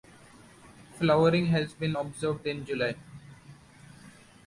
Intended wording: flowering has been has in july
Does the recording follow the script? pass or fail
fail